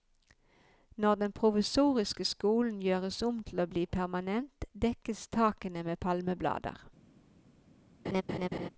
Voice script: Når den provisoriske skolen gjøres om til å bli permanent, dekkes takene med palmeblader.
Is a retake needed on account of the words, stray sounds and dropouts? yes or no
yes